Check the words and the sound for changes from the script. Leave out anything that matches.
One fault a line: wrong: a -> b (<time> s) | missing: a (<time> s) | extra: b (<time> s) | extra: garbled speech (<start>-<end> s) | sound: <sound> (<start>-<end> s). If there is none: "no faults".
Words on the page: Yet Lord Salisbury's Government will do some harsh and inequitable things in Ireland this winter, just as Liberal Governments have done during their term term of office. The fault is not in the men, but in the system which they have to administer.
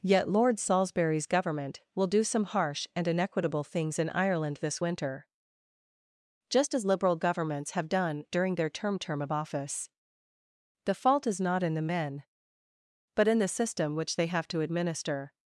no faults